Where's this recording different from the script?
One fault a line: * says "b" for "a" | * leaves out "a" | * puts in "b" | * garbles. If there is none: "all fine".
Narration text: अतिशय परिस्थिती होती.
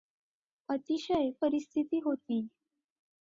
all fine